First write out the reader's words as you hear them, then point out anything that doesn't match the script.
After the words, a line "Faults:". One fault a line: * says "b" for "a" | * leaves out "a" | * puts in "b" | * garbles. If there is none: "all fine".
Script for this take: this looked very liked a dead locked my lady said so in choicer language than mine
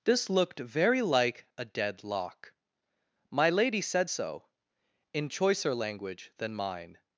this looked very like a dead lock my lady said so in choicer language than mine
Faults:
* says "like" for "liked"
* says "lock" for "locked"